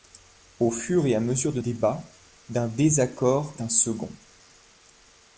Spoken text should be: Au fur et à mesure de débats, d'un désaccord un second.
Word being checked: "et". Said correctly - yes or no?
yes